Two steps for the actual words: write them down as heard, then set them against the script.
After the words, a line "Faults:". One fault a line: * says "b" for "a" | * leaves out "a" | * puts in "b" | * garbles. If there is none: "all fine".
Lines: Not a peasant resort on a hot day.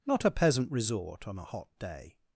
Not a peasant resort on a hot day.
Faults:
all fine